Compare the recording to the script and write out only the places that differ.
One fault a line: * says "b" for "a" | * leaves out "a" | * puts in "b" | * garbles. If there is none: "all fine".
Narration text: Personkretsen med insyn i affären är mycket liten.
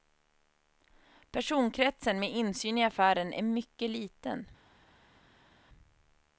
all fine